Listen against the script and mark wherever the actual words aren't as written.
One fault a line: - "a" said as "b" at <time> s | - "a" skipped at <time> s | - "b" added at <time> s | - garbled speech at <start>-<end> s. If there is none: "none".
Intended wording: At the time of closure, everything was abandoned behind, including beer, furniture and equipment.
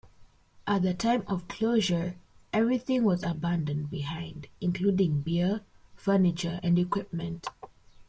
none